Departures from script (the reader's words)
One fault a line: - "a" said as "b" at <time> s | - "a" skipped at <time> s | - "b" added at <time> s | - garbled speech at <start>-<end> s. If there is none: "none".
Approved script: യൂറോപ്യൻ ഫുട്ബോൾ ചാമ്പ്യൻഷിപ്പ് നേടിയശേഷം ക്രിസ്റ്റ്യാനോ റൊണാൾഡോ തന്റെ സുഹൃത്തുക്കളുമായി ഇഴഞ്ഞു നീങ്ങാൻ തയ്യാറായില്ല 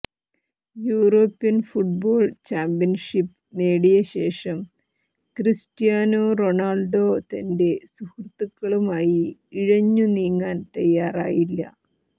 none